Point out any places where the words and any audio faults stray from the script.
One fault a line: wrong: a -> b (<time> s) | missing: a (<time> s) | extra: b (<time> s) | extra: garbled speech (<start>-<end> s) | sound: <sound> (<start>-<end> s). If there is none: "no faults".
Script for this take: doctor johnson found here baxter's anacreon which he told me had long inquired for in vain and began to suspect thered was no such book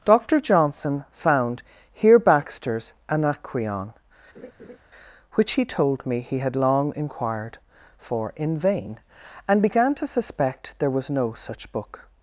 sound: laugh (4.3-4.8 s)
extra: he (6.2 s)
wrong: thered -> there (10.8 s)